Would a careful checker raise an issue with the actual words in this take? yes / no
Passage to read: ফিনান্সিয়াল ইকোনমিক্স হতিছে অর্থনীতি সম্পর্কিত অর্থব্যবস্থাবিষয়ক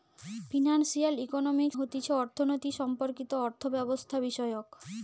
no